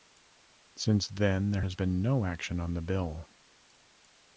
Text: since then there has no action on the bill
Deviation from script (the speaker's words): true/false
true